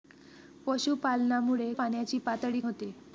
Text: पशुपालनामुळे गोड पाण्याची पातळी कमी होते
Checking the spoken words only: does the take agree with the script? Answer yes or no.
no